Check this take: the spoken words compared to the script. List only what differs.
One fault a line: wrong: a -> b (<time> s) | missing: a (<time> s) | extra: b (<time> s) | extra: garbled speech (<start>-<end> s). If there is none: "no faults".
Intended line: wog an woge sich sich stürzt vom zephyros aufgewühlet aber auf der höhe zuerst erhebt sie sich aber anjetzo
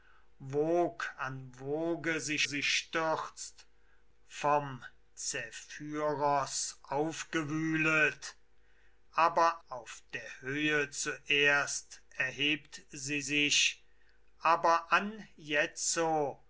no faults